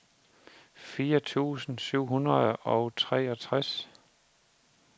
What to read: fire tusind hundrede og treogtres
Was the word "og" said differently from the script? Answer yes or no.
no